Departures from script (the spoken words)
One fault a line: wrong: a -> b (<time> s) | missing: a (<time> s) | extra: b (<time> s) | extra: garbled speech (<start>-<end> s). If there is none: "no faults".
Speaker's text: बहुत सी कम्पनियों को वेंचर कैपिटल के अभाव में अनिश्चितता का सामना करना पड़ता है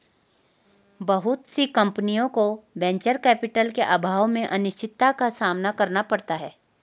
no faults